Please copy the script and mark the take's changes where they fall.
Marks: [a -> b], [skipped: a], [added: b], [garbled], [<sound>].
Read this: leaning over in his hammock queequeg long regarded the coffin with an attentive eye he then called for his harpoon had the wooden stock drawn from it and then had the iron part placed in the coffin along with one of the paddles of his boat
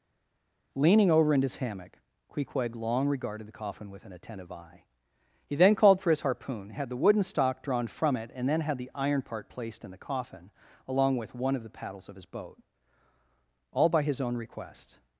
leaning over in his hammock queequeg long regarded the coffin with an attentive eye he then called for his harpoon had the wooden stock drawn from it and then had the iron part placed in the coffin along with one of the paddles of his boat [added: all by his own request]